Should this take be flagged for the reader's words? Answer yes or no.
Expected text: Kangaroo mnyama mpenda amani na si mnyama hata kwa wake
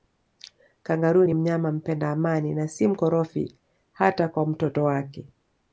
yes